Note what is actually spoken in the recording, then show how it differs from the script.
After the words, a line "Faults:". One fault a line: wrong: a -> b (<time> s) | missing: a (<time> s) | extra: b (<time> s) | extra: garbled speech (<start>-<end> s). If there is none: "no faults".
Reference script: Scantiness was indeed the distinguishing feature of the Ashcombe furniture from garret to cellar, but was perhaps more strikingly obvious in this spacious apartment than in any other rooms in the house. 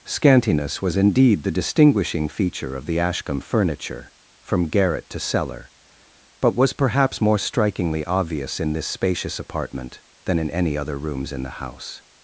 Scantiness was indeed the distinguishing feature of the Ashcombe furniture from garret to cellar, but was perhaps more strikingly obvious in this spacious apartment than in any other rooms in the house.
Faults:
no faults